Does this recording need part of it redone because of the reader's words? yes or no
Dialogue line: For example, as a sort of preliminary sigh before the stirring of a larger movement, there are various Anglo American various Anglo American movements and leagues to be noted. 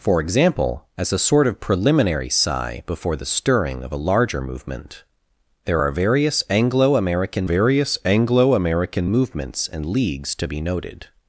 no